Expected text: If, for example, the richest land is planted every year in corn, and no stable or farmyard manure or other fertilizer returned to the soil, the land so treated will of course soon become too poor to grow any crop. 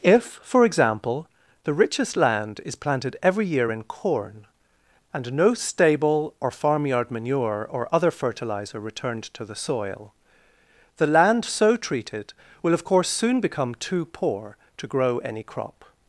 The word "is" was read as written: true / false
true